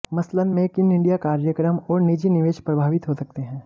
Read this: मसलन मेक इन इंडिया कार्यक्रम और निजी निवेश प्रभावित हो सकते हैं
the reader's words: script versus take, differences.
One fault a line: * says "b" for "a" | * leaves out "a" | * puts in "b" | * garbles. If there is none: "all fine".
all fine